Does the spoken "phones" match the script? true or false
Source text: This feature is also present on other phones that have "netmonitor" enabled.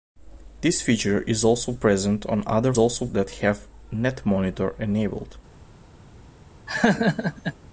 false